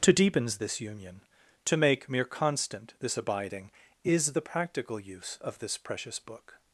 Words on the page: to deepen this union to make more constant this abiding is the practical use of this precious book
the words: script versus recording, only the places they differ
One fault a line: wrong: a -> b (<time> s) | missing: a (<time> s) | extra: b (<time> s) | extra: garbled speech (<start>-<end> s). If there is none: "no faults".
wrong: deepen -> deepens (0.1 s)
wrong: more -> mere (2.1 s)